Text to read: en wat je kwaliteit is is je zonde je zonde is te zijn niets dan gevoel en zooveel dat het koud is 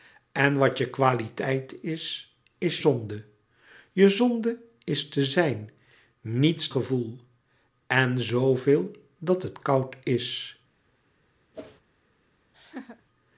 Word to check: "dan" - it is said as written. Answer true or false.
false